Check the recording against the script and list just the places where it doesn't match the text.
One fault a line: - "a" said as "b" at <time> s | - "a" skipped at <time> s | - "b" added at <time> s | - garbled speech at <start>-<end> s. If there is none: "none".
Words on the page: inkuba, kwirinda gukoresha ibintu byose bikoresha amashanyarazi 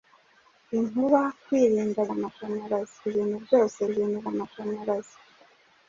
- "gukoresha" said as "amashanyarazi" at 2.2 s
- "bikoresha" said as "ibintu" at 3.9 s